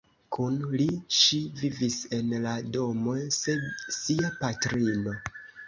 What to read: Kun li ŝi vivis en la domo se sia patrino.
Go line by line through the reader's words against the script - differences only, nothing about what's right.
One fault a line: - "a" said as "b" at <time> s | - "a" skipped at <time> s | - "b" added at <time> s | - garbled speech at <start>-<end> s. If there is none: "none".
none